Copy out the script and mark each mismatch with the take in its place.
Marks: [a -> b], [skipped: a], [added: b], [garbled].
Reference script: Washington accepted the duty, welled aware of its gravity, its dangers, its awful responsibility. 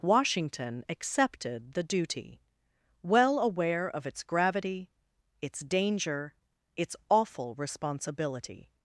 Washington accepted the duty, [welled -> well] aware of its gravity, its [dangers, -> danger] its awful responsibility.